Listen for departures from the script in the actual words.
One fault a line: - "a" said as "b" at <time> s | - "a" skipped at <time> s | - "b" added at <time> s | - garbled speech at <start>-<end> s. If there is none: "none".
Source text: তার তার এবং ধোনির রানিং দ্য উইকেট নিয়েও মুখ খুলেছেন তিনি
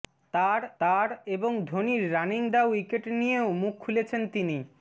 none